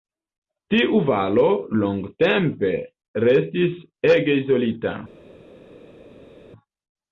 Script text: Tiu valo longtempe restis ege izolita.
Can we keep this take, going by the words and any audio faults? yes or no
yes